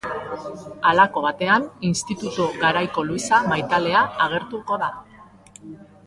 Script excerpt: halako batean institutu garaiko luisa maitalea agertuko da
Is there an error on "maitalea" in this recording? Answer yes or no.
no